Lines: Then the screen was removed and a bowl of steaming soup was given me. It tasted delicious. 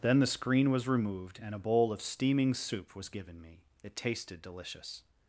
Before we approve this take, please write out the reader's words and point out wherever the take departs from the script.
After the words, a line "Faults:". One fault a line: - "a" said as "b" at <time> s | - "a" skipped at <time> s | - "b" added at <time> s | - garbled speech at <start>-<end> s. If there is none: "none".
Then the screen was removed and a bowl of steaming soup was given me. It tasted delicious.
Faults:
none